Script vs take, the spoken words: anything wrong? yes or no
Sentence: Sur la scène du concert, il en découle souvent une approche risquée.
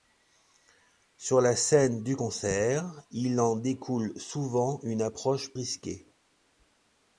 no